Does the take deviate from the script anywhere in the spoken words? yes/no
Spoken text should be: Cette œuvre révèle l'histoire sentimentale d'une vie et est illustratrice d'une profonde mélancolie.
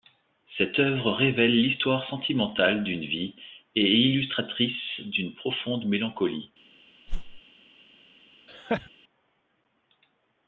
no